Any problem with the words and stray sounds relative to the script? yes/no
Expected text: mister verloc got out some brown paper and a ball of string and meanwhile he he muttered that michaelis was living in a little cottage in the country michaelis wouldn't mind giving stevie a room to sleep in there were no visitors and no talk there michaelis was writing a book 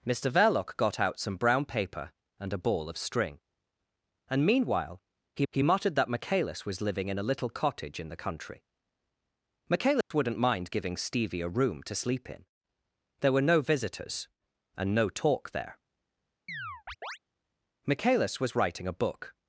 yes